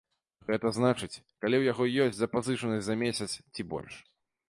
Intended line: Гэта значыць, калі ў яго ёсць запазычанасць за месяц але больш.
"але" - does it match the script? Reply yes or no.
no